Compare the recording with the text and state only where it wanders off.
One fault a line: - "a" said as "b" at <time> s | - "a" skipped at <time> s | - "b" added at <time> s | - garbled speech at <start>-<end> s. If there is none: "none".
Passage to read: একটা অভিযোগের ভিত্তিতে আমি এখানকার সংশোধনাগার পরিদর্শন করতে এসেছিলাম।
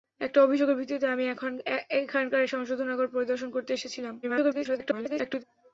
- garbled speech at 4.2-5.4 s